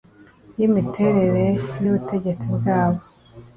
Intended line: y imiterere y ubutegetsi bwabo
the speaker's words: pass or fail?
pass